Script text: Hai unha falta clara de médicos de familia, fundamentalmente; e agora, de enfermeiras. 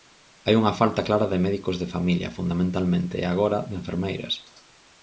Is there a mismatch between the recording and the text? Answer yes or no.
no